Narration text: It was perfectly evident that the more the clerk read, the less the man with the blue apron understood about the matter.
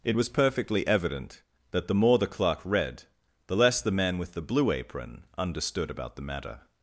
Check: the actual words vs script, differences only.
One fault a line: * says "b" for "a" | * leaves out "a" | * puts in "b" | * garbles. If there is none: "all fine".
all fine